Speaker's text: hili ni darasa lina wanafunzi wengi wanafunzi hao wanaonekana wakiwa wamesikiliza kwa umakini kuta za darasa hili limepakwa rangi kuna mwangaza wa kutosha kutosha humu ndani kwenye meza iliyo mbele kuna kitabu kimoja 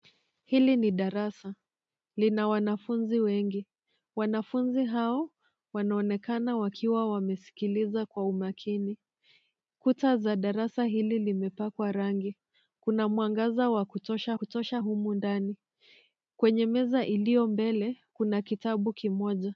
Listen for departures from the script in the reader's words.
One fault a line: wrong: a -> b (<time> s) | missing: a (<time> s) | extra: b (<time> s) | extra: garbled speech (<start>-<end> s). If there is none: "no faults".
no faults